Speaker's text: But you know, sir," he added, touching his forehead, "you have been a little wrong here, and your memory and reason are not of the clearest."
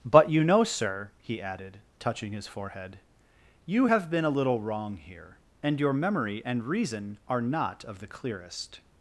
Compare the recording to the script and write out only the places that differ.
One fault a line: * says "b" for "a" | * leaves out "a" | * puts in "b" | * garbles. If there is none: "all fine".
all fine